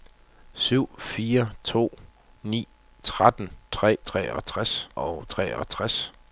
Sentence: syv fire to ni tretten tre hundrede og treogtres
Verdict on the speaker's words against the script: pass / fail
fail